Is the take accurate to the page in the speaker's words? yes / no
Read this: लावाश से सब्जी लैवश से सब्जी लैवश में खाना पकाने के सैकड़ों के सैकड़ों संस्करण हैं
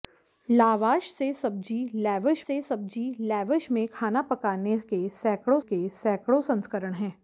yes